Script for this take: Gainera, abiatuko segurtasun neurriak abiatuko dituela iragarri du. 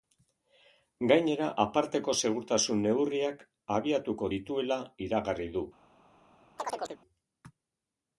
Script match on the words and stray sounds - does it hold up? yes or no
no